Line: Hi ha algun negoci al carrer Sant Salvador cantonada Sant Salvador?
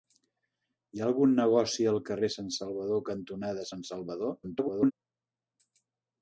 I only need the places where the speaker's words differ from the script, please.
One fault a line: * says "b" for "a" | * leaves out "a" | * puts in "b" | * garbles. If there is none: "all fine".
* garbles